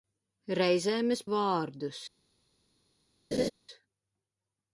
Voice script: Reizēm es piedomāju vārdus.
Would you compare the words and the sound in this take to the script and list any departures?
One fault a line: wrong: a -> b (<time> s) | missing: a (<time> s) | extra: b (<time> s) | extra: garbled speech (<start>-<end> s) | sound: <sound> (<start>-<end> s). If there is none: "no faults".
missing: piedomāju (1.2 s)
sound: laugh (3.3-3.5 s)